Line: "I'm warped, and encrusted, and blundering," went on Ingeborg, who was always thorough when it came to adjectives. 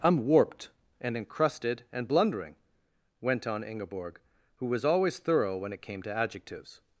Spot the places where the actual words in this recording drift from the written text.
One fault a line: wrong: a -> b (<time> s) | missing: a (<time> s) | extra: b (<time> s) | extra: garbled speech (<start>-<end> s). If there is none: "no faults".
no faults